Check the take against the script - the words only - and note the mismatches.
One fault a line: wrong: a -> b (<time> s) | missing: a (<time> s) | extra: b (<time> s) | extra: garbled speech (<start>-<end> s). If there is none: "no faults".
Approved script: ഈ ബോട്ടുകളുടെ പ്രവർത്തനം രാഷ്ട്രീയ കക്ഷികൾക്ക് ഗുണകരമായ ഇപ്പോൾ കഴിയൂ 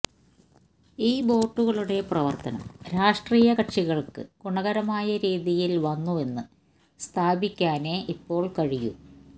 extra: രീതിയിൽ വന്നുവെന്ന് സ്ഥാപിക്കാനേ (5.2 s)